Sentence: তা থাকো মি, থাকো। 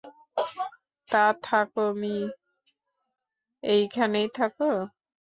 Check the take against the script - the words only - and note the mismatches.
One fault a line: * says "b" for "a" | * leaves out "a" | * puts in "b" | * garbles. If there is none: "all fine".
* puts in "এইখানেই"